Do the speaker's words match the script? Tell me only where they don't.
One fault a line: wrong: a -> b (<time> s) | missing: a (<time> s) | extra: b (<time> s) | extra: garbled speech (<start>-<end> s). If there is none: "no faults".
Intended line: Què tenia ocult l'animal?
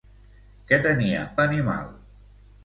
missing: ocult (1.2 s)